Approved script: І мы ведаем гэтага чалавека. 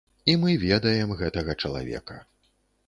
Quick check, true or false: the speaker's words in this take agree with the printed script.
true